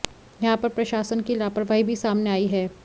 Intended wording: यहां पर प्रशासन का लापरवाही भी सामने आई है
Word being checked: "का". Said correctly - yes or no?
no